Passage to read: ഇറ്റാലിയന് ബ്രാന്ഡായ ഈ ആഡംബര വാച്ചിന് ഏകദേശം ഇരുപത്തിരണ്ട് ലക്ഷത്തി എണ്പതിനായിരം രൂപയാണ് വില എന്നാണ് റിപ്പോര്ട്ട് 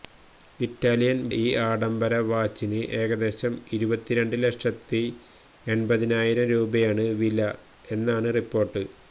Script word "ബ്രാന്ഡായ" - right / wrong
wrong